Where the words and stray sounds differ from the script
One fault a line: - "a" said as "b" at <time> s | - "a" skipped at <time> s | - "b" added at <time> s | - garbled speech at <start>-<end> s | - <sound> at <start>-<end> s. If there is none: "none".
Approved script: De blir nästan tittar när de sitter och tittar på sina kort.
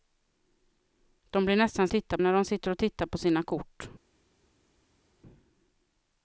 none